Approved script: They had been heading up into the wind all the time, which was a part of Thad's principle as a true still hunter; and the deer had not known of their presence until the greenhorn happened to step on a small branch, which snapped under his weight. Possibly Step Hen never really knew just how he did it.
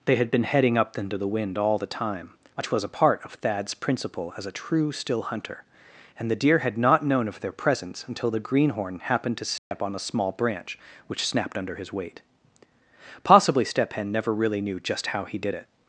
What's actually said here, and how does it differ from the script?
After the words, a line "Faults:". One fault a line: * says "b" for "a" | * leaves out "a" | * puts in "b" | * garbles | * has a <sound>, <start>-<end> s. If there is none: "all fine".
They had been heading up into the wind all the time, which was a part of Thad's principle as a true still hunter; and the deer had not known of their presence until the greenhorn happened to step on a small branch, which snapped under his weight. Possibly Step Hen never really knew just how he did it.
Faults:
* has a dropout, 9.6-9.7 s